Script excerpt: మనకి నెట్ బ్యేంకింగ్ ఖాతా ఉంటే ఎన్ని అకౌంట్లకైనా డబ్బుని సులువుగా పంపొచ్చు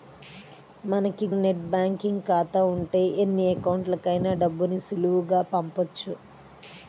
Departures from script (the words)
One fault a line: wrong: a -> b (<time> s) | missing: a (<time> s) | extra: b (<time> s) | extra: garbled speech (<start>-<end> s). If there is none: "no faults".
no faults